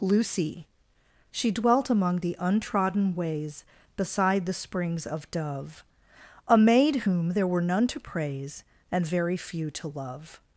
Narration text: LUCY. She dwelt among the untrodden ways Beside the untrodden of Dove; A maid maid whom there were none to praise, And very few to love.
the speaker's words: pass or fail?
fail